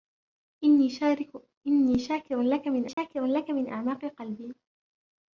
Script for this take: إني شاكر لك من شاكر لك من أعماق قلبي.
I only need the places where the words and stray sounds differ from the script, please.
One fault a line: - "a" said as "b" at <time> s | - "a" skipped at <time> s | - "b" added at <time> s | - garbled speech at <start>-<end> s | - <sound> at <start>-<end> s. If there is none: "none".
- dropout at 2.9-3.0 s